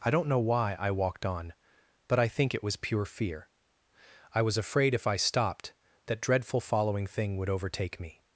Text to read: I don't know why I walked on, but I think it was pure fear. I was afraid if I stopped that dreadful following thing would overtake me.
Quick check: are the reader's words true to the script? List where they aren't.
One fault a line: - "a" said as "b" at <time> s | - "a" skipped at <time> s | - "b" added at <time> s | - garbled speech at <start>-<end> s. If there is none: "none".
none